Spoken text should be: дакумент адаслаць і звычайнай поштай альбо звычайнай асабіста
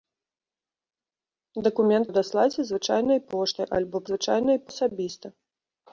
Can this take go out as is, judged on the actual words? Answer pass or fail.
pass